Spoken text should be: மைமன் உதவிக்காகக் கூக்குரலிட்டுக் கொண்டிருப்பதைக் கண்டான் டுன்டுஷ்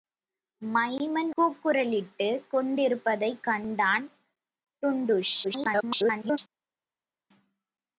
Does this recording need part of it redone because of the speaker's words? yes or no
yes